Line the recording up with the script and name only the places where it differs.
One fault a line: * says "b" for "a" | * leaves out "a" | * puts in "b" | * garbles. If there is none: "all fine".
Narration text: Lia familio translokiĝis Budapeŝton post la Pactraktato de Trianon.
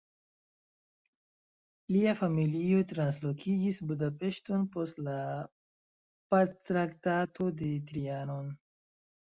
all fine